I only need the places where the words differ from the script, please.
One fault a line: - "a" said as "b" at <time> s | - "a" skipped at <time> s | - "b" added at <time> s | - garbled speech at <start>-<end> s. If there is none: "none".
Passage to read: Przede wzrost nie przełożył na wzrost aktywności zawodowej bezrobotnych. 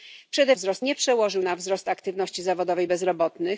none